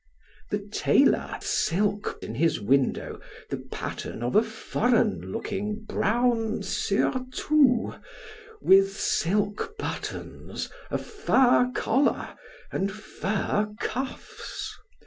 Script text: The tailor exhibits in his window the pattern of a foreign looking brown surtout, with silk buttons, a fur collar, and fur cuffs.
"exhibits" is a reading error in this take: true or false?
true